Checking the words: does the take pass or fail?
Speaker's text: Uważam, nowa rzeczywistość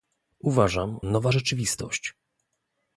pass